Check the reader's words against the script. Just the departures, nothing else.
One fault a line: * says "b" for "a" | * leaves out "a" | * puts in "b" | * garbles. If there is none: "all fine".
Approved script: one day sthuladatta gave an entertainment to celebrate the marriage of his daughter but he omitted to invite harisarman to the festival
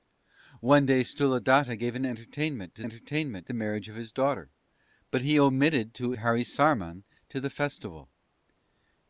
* says "entertainment" for "celebrate"
* leaves out "invite"